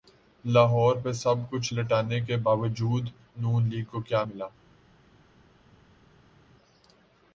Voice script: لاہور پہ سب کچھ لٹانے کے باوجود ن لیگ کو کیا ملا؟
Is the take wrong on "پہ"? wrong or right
right